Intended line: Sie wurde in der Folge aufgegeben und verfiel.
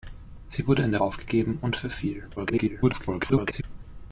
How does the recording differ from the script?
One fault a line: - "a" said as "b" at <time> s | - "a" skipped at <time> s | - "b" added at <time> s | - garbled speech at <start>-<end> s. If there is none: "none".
- "Folge" skipped at 1.0 s
- garbled speech at 2.4-3.6 s